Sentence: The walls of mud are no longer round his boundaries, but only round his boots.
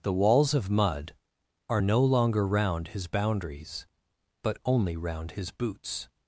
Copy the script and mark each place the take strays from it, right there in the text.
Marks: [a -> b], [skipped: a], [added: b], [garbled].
The walls of mud are no longer round his boundaries, but only round his boots.